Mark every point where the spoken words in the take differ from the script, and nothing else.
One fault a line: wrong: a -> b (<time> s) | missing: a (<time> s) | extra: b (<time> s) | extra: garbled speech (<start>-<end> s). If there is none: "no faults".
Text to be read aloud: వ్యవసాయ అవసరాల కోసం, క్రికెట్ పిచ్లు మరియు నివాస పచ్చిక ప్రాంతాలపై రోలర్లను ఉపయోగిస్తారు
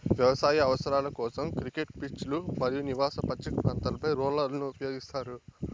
no faults